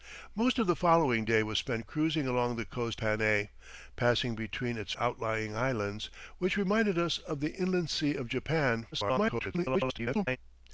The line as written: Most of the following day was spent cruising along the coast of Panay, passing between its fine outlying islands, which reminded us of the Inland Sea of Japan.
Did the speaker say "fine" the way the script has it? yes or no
no